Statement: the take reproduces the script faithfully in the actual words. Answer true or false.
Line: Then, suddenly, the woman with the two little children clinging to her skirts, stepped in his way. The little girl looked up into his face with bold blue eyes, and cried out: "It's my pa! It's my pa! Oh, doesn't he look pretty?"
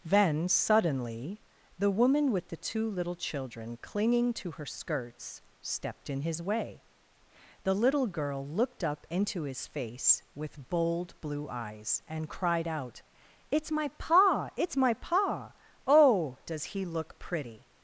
false